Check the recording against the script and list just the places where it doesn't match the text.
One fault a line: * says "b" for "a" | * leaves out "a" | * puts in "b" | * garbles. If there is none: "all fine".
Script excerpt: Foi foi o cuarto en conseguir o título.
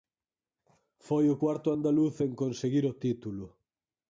* leaves out "foi"
* puts in "andaluz"